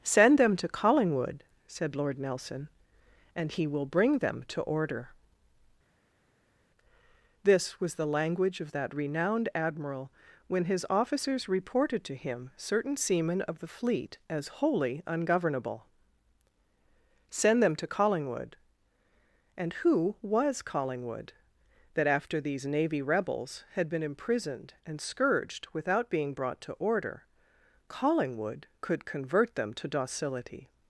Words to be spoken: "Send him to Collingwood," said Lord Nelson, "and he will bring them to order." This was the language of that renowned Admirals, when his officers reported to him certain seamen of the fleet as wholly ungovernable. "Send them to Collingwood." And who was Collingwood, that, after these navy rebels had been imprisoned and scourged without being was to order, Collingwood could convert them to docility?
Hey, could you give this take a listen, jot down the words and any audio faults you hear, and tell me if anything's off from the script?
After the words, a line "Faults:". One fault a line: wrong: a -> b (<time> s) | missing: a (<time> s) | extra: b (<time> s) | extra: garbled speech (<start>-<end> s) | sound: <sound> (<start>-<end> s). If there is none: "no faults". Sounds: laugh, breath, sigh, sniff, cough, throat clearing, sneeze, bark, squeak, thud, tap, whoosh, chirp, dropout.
"Send them to Collingwood," said Lord Nelson, "and he will bring them to order." This was the language of that renowned Admiral, when his officers reported to him certain seamen of the fleet as wholly ungovernable. "Send them to Collingwood." And who was Collingwood, that, after these navy rebels had been imprisoned and scourged without being brought to order, Collingwood could convert them to docility?
Faults:
wrong: him -> them (0.4 s)
wrong: Admirals -> Admiral (9.5 s)
wrong: was -> brought (26.3 s)